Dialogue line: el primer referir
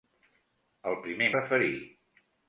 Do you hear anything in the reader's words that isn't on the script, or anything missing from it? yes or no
no